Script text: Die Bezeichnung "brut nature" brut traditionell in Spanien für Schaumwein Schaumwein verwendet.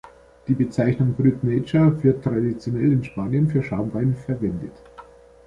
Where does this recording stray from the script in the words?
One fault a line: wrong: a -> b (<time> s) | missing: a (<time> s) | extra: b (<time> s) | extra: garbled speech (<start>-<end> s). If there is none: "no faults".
wrong: brut -> wird (2.0 s)
missing: Schaumwein (4.1 s)